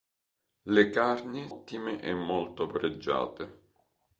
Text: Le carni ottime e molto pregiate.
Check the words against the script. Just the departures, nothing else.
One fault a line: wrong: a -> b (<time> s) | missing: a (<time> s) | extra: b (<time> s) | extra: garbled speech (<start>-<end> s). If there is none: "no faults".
no faults